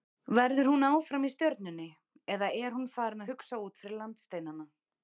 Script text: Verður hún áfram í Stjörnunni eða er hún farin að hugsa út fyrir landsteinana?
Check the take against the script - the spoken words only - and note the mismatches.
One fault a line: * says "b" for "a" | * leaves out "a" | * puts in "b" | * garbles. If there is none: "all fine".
all fine